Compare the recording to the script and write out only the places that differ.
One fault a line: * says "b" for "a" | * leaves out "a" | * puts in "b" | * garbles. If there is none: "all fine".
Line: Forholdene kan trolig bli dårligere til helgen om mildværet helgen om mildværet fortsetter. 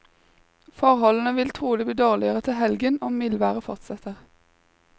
* says "vil" for "kan"
* leaves out "helgen om mildværet"